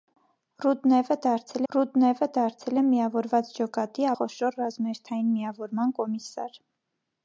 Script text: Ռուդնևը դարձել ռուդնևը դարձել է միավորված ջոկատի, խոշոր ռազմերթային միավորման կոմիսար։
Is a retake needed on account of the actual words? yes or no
no